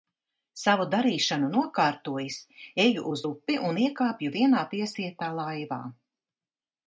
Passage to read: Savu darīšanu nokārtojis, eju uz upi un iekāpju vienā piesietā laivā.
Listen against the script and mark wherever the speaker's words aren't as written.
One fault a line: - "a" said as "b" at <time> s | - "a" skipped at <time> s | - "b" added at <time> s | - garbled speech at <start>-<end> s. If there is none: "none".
none